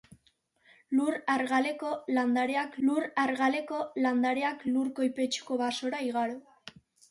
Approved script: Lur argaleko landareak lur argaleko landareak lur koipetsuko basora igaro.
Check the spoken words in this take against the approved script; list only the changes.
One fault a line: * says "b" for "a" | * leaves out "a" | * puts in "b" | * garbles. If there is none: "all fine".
all fine